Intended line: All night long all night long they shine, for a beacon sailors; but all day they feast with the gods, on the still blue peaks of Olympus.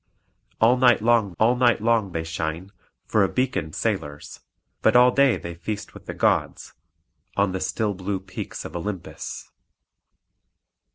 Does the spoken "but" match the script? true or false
true